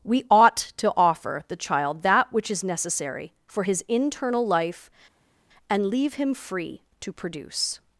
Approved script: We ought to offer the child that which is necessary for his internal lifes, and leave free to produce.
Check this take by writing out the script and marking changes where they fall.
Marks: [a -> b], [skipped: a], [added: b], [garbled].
We ought to offer the child that which is necessary for his internal [lifes, -> life] and leave [added: him] free to produce.